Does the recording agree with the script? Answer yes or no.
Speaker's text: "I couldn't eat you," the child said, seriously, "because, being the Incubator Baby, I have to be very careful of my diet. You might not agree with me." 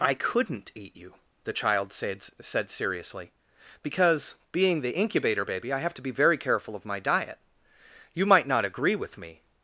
no